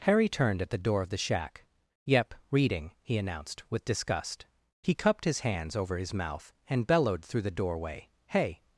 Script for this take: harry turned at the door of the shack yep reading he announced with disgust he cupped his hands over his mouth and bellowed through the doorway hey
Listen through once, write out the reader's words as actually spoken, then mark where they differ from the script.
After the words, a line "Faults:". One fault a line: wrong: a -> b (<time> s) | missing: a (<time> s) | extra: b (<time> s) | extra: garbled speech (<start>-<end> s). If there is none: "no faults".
harry turned at the door of the shack yep reading he announced with disgust he cupped his hands over his mouth and bellowed through the doorway hey
Faults:
no faults